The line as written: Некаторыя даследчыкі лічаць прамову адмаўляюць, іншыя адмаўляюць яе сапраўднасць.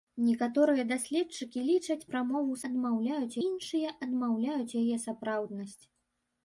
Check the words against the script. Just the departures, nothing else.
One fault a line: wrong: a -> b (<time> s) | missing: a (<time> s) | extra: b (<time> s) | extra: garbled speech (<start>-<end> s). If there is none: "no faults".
no faults